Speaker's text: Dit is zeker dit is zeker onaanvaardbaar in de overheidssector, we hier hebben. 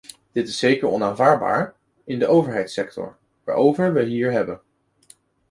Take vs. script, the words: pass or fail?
fail